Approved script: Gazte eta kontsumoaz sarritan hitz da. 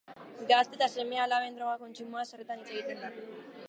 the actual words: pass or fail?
fail